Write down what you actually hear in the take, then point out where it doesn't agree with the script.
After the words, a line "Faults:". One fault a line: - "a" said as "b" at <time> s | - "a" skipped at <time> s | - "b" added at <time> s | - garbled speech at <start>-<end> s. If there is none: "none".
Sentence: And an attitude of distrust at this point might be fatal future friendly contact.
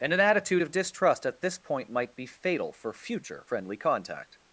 And an attitude of distrust at this point might be fatal for future friendly contact.
Faults:
- "for" added at 2.7 s